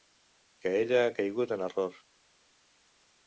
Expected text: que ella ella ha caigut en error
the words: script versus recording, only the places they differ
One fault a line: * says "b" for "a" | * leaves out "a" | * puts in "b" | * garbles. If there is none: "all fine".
* leaves out "ella"